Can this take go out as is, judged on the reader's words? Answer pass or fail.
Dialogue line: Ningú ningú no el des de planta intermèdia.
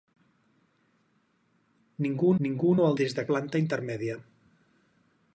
pass